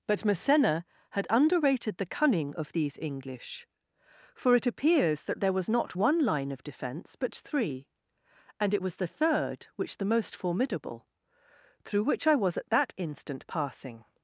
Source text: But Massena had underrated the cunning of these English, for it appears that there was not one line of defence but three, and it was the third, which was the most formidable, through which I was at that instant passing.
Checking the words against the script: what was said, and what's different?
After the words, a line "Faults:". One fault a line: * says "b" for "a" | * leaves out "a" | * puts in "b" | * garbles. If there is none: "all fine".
But Massena had underrated the cunning of these English, for it appears that there was not one line of defence but three, and it was the third, which the most formidable, through which I was at that instant passing.
Faults:
* leaves out "was"